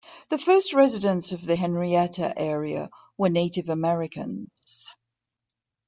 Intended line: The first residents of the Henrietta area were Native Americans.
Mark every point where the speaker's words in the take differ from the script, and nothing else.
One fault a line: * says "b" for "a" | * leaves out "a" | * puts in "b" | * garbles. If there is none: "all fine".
all fine